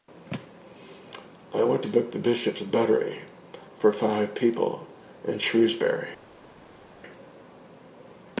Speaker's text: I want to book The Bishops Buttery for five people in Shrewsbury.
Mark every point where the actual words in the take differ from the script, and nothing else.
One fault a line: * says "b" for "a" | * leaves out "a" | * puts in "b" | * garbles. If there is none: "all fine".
all fine